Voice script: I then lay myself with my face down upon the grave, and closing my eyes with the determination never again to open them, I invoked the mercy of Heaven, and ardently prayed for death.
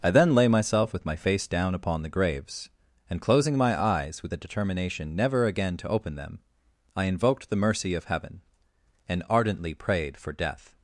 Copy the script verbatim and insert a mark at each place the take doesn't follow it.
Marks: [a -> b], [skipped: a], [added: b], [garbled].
I then lay myself with my face down upon the [grave, -> graves] and closing my eyes with the determination never again to open them, I invoked the mercy of Heaven, and ardently prayed for death.